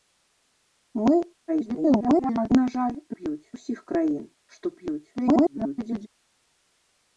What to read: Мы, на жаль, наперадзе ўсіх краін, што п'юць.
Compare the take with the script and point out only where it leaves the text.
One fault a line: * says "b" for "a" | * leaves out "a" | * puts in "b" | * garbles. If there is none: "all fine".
* garbles
* says "п'юць" for "наперадзе"
* garbles